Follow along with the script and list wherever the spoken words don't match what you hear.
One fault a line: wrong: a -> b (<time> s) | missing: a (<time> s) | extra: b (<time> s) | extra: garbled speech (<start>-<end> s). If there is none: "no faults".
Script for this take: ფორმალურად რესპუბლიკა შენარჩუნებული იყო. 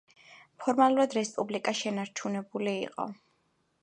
no faults